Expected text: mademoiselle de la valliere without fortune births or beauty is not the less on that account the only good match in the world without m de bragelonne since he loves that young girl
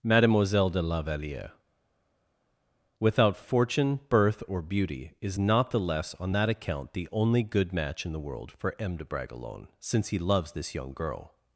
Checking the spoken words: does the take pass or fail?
fail